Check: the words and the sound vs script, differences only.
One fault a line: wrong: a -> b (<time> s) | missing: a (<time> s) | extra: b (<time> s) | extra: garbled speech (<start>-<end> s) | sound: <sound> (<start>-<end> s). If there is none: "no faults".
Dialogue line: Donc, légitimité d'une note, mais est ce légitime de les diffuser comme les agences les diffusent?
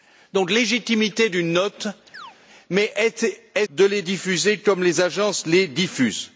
sound: chirp (2.1-2.4 s)
missing: ce légitime (3.7 s)